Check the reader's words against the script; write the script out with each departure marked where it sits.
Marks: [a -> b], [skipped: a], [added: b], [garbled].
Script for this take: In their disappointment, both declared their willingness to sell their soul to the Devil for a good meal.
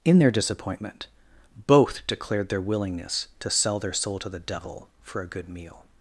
In their disappointment, both declared their willingness to sell their soul to the Devil for a good meal.